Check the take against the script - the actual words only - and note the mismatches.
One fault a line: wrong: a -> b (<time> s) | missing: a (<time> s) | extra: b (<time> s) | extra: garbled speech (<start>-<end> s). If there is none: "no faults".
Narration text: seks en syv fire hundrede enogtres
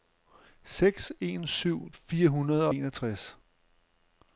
no faults